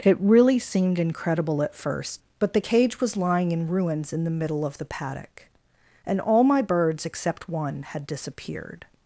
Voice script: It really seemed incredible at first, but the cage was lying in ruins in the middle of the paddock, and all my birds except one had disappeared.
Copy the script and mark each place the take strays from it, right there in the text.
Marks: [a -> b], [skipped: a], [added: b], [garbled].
It really seemed incredible at first, but the cage was lying in ruins in the middle of the paddock, and all my birds except one had disappeared.